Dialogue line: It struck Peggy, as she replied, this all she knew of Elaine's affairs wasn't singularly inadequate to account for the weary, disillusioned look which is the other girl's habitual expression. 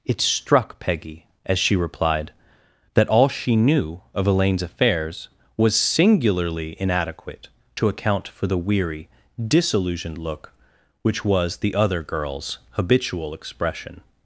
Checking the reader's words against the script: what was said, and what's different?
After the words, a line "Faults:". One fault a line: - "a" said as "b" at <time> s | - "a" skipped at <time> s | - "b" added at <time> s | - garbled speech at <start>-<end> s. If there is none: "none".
It struck Peggy, as she replied, that all she knew of Elaine's affairs was singularly inadequate to account for the weary, disillusioned look which was the other girl's habitual expression.
Faults:
- "this" said as "that" at 3.0 s
- "wasn't" said as "was" at 5.6 s
- "is" said as "was" at 11.2 s